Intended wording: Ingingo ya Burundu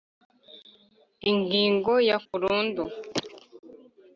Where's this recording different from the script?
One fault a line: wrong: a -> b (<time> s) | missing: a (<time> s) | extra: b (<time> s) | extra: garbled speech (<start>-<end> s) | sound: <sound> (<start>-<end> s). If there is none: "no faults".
no faults